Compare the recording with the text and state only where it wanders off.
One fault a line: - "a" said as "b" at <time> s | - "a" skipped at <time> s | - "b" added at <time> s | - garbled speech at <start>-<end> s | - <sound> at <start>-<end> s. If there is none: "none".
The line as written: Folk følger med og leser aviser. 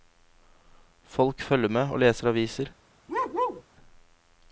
- bark at 3.1-3.6 s